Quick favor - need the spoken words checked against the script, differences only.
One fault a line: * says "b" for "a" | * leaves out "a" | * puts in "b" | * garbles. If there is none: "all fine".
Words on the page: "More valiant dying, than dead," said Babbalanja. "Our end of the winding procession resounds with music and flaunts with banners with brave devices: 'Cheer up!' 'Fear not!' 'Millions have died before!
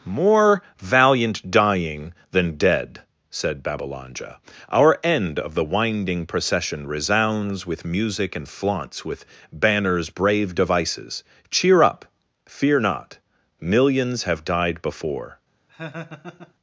* leaves out "with"